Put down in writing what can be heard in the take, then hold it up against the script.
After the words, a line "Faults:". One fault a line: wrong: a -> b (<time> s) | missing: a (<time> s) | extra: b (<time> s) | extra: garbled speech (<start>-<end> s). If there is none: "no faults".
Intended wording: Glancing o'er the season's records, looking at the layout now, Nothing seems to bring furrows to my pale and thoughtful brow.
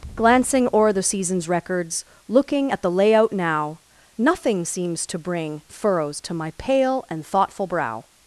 Glancing o'er the season's records, looking at the layout now, Nothing seems to bring furrows to my pale and thoughtful brow.
Faults:
no faults